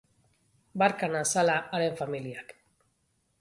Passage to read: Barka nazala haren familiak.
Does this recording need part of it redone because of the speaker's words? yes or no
no